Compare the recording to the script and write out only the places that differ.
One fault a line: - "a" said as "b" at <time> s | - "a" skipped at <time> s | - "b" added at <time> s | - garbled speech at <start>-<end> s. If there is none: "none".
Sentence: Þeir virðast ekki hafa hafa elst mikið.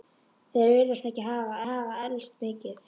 none